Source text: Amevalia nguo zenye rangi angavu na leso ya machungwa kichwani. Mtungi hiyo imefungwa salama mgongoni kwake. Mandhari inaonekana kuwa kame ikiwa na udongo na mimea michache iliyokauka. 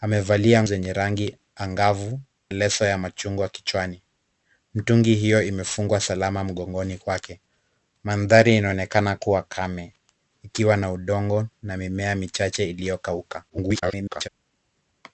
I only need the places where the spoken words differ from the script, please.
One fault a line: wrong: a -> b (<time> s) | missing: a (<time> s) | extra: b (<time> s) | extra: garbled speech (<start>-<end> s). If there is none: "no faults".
missing: nguo (0.6 s)
missing: na (2.2 s)
extra: garbled speech (13.5-14.3 s)